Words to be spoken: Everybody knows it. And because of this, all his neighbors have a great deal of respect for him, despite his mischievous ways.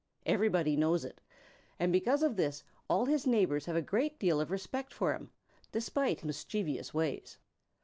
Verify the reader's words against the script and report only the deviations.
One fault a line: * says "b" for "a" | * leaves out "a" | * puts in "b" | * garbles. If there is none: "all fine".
* leaves out "his"